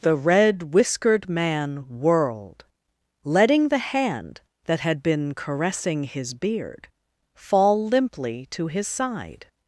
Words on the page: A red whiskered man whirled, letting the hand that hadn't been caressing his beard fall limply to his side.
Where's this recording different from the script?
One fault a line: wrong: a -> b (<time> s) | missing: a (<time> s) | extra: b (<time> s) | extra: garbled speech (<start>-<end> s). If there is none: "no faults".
wrong: A -> The (0.0 s)
wrong: hadn't -> had (4.8 s)